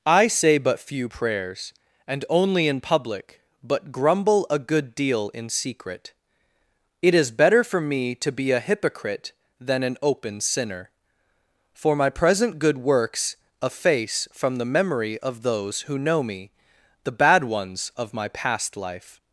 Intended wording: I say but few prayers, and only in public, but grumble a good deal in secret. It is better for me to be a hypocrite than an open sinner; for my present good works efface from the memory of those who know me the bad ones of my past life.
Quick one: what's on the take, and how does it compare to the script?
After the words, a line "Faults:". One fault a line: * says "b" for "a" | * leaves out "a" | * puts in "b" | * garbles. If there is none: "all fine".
I say but few prayers, and only in public, but grumble a good deal in secret. It is better for me to be a hypocrite than an open sinner; for my present good works efface from the memory of those who know me the bad ones of my past life.
Faults:
all fine